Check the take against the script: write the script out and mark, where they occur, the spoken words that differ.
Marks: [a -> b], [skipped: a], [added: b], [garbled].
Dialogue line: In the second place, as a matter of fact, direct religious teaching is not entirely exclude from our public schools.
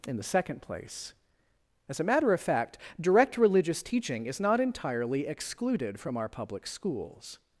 In the second place, as a matter of fact, direct religious teaching is not entirely [exclude -> excluded] from our public schools.